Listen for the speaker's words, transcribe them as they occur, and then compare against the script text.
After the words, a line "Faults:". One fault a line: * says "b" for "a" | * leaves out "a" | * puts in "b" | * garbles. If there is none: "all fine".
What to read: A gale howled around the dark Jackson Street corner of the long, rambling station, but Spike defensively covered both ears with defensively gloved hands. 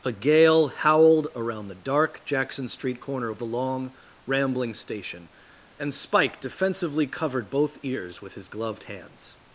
A gale howled around the dark Jackson Street corner of the long, rambling station, and Spike defensively covered both ears with his gloved hands.
Faults:
* says "and" for "but"
* says "his" for "defensively"